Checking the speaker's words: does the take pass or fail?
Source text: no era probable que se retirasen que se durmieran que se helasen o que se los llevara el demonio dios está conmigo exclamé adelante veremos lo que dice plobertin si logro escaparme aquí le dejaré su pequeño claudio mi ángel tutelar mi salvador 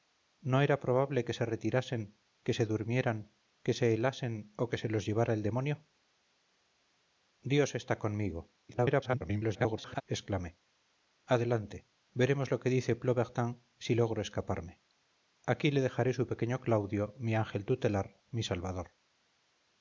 fail